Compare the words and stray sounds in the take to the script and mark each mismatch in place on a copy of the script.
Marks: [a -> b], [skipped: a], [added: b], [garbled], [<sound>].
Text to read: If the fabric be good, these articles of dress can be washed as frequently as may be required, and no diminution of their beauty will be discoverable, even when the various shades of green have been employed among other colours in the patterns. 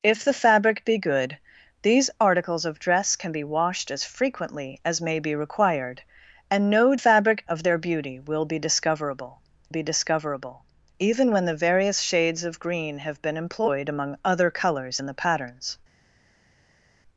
If the fabric be good, these articles of dress can be washed as frequently as may be required, and no [diminution -> fabric] of their beauty will be discoverable, [added: be discoverable] even when the various shades of green have been employed among other colours in the patterns.